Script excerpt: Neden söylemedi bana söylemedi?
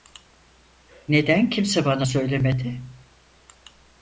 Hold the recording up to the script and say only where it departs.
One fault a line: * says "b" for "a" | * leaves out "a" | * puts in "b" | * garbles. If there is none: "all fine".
* says "kimse" for "söylemedi"